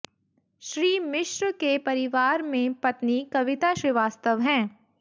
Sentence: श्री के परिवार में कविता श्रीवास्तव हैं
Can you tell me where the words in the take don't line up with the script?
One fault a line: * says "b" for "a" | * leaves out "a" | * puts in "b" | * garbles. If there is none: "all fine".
* puts in "मिश्र"
* puts in "पत्नी"